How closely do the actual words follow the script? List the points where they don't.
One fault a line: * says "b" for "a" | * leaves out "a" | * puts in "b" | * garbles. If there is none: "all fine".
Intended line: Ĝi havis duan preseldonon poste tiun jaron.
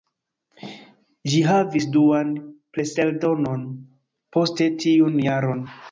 all fine